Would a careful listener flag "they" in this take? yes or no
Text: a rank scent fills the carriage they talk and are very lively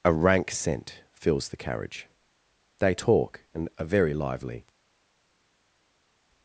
no